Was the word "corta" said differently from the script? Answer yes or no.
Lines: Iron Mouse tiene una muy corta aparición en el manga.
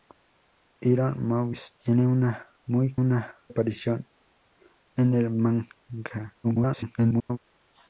yes